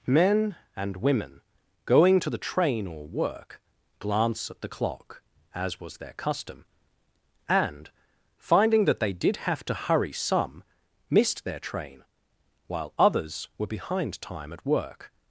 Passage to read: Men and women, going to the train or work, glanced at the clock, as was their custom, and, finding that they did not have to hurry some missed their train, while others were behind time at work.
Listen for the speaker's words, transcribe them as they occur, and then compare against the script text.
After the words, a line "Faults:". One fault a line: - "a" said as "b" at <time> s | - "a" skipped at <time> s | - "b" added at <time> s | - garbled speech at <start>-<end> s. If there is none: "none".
Men and women, going to the train or work, glance at the clock, as was their custom, and, finding that they did have to hurry some missed their train, while others were behind time at work.
Faults:
- "glanced" said as "glance" at 4.0 s
- "not" skipped at 9.4 s